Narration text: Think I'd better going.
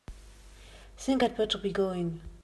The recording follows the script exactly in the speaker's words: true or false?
false